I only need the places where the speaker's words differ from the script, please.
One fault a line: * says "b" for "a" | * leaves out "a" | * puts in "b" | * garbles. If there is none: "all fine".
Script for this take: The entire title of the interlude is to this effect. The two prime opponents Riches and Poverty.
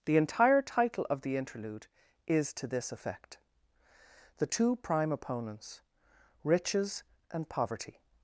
all fine